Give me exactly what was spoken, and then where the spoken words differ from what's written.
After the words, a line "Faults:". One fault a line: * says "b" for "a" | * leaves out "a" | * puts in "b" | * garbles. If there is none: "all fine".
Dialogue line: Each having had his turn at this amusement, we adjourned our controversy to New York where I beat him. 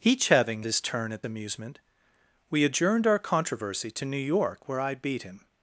Each having his turn at amusement, we adjourned our controversy to New York where I beat him.
Faults:
* leaves out "had"
* leaves out "this"